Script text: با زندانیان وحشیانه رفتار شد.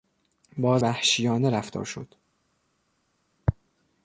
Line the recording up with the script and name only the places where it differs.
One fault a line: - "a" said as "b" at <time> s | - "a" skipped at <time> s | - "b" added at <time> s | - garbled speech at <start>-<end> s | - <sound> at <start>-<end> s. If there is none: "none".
- "زندانیان" skipped at 0.8 s